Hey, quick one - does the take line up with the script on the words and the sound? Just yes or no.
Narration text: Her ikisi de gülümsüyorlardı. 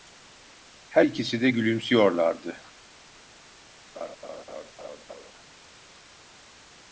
no